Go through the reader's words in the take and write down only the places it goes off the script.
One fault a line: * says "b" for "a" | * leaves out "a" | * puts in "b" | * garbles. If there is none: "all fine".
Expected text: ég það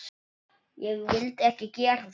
* puts in "vildi ekki gera"